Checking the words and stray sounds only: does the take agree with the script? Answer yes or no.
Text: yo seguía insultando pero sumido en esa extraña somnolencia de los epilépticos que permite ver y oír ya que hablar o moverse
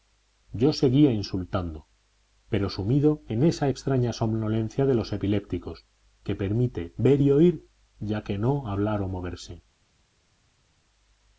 no